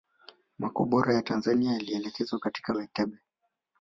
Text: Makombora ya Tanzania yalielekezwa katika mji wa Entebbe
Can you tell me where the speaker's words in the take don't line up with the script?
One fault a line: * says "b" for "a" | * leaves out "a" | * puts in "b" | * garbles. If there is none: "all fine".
* leaves out "mji"